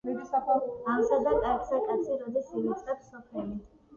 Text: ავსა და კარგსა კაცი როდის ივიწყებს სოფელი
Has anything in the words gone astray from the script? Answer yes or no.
no